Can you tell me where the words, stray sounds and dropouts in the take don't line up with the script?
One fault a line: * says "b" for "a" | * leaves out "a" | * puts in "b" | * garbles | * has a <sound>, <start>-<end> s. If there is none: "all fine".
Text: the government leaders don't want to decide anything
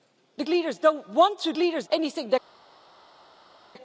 * leaves out "government"
* says "leaders" for "decide"